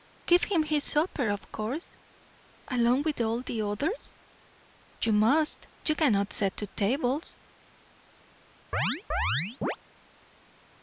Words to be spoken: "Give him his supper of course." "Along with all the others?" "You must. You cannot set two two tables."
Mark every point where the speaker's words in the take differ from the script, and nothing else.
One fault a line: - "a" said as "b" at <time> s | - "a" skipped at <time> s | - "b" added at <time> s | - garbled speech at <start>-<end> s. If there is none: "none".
- "two" skipped at 6.7 s